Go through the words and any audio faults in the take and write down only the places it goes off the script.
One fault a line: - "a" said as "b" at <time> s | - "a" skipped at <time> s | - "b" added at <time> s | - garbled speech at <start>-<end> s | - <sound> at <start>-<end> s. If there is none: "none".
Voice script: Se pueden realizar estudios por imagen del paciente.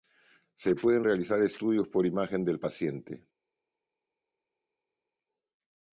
none